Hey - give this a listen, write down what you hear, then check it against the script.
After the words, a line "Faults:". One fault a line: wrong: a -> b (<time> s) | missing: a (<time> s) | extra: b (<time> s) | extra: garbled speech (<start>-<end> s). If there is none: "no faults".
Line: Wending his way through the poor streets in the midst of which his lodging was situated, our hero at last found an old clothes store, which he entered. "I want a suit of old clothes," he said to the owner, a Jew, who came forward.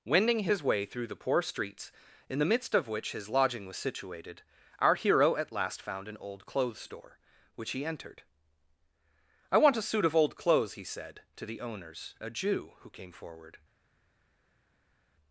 Wending his way through the poor streets in the midst of which his lodging was situated, our hero at last found an old clothes store, which he entered. "I want a suit of old clothes," he said to the owners, a Jew, who came forward.
Faults:
wrong: owner -> owners (11.6 s)